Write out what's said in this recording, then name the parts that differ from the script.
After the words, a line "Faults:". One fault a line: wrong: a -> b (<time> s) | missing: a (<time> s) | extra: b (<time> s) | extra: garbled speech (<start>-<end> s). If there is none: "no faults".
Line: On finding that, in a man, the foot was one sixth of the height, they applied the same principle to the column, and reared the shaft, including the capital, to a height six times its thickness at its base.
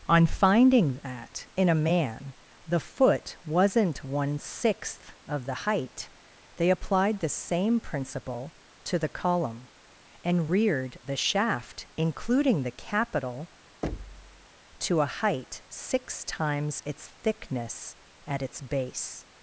On finding that, in a man, the foot wasn't one sixth of the height, they applied the same principle to the column, and reared the shaft, including the capital, to a height six times its thickness at its base.
Faults:
wrong: was -> wasn't (3.5 s)